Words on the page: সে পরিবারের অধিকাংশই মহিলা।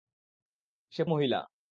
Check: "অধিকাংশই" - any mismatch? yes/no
yes